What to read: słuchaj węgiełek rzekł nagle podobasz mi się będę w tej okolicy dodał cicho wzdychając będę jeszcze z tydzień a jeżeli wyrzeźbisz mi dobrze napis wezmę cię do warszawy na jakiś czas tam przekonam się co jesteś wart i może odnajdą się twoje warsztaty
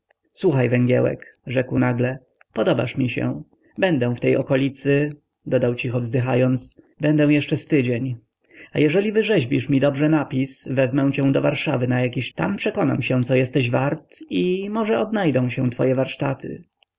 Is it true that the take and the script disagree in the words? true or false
true